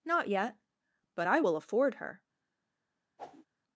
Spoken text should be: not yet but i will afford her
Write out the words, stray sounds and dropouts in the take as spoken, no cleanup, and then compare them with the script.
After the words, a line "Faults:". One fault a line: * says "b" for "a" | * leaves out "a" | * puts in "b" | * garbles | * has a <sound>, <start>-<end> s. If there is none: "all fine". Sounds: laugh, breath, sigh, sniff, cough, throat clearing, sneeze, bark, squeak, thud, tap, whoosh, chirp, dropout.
not yet but i will afford her
Faults:
* has a whoosh, 3.2-3.5 s